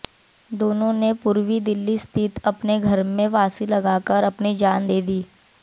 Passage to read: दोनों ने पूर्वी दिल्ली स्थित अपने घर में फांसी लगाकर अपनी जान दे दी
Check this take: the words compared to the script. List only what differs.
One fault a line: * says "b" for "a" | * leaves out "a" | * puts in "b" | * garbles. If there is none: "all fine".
all fine